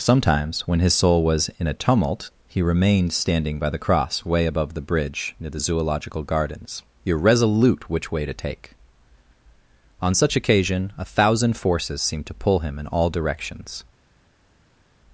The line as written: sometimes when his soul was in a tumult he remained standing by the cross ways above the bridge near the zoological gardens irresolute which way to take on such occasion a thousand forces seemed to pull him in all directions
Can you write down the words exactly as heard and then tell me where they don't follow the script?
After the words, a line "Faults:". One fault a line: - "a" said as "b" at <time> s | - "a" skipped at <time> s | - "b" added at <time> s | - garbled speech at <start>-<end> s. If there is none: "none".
sometimes when his soul was in a tumult he remained standing by the cross way above the bridge near the zoological gardens irresolute which way to take on such occasion a thousand forces seemed to pull him in all directions
Faults:
- "ways" said as "way" at 4.2 s